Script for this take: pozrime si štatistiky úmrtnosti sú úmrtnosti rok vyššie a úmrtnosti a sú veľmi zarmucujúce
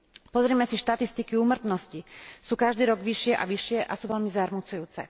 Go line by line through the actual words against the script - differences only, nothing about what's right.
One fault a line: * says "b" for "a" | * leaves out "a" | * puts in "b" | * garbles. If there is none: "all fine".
* says "každý" for "úmrtnosti"
* says "vyššie" for "úmrtnosti"